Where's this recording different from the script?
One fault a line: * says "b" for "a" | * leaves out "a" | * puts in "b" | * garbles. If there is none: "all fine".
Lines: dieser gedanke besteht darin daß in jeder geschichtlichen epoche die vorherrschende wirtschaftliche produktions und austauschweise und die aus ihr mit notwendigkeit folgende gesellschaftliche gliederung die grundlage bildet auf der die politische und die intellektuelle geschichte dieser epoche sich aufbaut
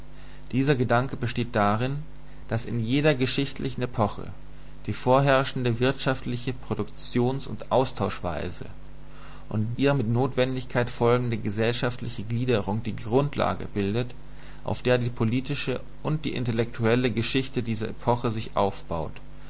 * leaves out "die aus"